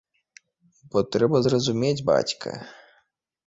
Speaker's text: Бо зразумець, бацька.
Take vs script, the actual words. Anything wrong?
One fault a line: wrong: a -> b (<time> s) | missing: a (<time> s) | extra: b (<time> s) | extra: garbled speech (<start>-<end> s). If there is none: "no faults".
extra: трэба (1.2 s)